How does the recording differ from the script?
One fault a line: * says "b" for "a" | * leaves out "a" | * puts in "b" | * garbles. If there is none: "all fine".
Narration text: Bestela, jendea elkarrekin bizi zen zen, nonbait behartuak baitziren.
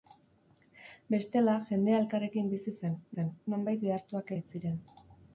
all fine